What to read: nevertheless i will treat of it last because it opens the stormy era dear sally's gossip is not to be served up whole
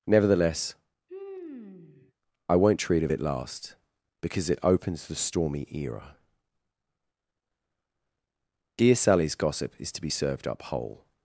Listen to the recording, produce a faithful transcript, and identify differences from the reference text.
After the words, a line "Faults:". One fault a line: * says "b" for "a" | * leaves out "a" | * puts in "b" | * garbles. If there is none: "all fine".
nevertheless i won't treat of it last because it opens the stormy era dear sally's gossip is to be served up whole
Faults:
* says "won't" for "will"
* leaves out "not"